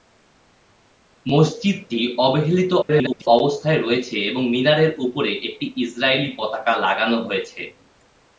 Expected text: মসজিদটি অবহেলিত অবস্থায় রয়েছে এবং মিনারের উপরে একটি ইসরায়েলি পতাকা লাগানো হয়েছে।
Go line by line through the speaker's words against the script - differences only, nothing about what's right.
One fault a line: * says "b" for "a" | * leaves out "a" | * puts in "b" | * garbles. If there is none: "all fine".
* garbles